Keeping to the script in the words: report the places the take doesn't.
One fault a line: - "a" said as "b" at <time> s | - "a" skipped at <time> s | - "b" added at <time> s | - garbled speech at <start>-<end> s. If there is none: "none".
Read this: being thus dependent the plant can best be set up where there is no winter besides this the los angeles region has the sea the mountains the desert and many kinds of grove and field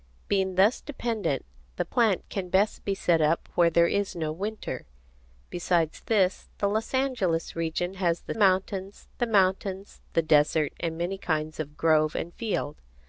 - "sea" said as "mountains" at 8.3 s